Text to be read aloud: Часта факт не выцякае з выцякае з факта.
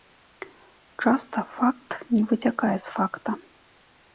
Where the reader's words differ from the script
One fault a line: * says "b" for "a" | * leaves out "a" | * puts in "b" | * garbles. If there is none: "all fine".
* leaves out "выцякае з"